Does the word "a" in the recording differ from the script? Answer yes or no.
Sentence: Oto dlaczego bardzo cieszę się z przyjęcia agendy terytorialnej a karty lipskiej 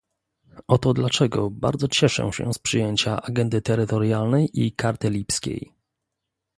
yes